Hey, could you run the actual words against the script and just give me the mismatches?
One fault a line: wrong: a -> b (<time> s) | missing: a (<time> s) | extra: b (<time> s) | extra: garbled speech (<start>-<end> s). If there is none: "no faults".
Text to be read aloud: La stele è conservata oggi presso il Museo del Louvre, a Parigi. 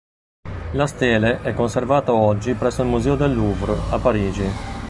no faults